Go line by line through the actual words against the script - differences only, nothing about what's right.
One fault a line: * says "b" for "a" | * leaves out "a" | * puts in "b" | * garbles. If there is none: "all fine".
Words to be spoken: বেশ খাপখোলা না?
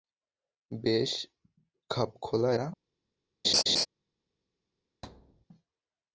all fine